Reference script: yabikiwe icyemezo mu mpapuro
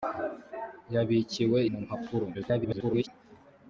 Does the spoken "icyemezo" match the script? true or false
false